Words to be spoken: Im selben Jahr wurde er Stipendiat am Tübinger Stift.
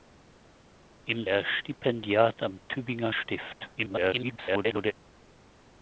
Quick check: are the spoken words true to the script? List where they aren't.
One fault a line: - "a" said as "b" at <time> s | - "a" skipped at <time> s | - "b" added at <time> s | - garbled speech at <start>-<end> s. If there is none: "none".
- "selben Jahr wurde" skipped at 1.3 s
- garbled speech at 3.8-4.9 s